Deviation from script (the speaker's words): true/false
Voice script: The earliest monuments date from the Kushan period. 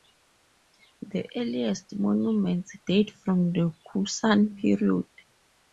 false